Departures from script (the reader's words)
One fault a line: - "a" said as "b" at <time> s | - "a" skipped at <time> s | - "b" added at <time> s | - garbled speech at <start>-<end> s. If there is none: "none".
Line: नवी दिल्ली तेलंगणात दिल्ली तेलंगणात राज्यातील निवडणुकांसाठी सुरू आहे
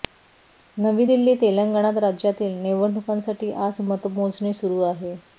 - "दिल्ली तेलंगणात राज्यातील निवडणुकांसाठी" said as "राज्यातील निवडणुकांसाठी आज मतमोजणी" at 2.0 s